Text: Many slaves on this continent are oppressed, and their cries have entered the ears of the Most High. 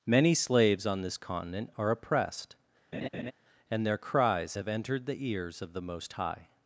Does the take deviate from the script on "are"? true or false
false